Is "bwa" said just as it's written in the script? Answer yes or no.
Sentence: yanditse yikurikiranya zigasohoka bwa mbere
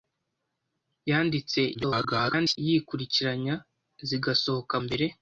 no